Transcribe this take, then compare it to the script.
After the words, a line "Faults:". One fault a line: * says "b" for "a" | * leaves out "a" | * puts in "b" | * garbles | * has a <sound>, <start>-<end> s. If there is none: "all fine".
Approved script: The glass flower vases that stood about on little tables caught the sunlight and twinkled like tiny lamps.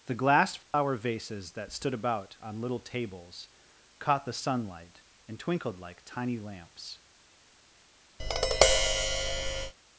The glass flower vases that stood about on little tables caught the sunlight and twinkled like tiny lamps.
Faults:
* has a dropout, 0.6-0.7 s
* has a tap, 8.2-9.7 s